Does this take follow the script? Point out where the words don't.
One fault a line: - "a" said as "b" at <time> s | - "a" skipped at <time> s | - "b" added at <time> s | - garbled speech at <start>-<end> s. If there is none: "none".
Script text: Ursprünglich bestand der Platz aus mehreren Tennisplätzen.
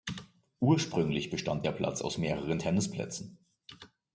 none